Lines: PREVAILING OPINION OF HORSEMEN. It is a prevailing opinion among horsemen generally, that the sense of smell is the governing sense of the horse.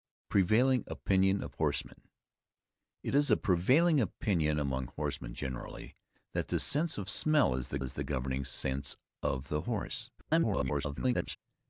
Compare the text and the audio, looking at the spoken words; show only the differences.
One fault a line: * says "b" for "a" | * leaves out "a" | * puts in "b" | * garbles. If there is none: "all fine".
* puts in "is the"
* garbles